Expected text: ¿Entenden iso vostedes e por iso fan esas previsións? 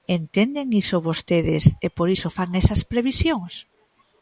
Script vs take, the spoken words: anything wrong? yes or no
no